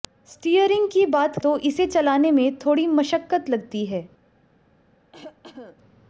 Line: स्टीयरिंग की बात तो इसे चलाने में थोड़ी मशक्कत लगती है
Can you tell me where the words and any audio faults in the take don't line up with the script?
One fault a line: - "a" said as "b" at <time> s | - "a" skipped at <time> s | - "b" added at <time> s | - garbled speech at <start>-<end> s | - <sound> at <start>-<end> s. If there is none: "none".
- cough at 5.1-5.8 s